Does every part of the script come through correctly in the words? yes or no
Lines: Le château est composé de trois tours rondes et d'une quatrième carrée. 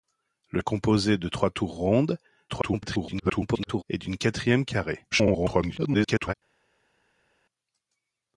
no